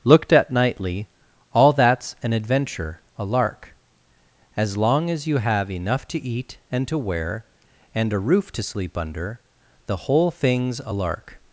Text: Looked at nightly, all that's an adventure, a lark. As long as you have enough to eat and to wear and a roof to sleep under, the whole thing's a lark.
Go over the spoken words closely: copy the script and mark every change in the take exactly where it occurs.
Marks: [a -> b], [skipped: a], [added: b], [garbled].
Looked at nightly, all that's an adventure, a lark. As long as you have enough to eat and to wear and a roof to sleep under, the whole thing's a lark.